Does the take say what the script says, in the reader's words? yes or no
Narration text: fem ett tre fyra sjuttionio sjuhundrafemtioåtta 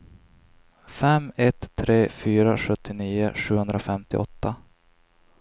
yes